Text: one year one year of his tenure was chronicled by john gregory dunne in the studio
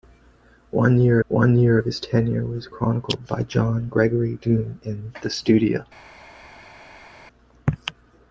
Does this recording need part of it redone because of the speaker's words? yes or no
no